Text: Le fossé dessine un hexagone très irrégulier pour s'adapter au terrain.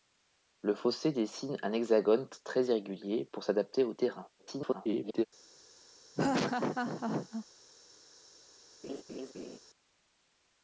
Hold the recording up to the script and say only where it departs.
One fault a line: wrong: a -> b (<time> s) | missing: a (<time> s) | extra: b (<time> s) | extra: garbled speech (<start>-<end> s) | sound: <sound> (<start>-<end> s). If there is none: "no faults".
extra: garbled speech (4.4-5.3 s)
sound: laugh (6.2-7.5 s)
sound: laugh (8.8-9.6 s)